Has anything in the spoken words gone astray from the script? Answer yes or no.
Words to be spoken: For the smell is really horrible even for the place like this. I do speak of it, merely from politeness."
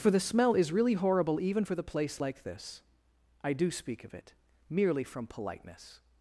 no